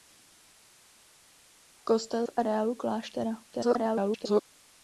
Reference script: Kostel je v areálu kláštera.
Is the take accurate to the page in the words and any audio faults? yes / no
no